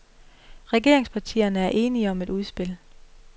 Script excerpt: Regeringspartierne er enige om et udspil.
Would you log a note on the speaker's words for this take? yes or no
no